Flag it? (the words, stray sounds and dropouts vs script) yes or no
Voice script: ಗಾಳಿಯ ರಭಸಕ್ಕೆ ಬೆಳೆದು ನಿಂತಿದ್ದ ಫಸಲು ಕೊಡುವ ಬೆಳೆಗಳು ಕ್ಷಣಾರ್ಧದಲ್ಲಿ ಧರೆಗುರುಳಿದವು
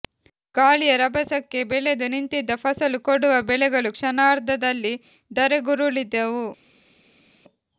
no